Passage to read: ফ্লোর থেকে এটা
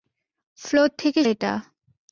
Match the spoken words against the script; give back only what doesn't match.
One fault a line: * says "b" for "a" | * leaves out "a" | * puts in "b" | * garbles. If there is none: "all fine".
all fine